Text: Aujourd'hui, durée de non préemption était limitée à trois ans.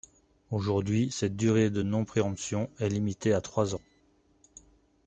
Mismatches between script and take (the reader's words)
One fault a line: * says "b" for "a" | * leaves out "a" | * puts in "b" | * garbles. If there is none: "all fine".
* puts in "cette"
* says "est" for "était"